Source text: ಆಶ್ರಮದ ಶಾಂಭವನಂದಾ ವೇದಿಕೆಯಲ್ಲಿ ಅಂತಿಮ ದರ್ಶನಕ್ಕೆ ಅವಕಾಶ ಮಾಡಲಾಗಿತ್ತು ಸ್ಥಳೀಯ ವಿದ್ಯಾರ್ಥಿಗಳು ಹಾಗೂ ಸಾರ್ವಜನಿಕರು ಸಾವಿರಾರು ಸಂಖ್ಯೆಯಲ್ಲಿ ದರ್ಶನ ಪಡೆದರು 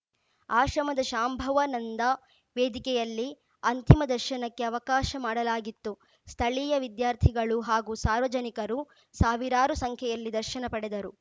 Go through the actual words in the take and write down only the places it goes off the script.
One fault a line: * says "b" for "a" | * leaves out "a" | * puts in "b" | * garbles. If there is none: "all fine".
all fine